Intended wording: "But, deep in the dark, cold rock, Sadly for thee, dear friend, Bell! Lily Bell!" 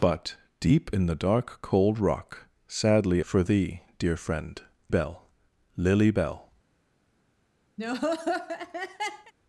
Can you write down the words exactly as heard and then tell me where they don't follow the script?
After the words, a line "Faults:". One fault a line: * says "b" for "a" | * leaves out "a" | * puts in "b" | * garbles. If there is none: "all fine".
"But, deep in the dark, cold rock, Sadly for thee, dear friend, Bell! Lily Bell!"
Faults:
all fine